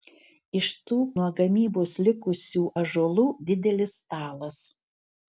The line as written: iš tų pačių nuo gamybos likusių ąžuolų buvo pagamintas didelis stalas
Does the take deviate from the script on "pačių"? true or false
true